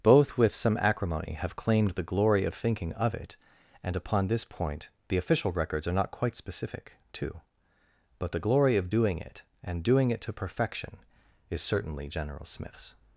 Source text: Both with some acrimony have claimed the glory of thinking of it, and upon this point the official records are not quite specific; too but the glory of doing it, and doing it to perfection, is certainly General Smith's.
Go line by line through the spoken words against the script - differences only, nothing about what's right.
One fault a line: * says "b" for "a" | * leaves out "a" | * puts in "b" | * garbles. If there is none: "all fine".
all fine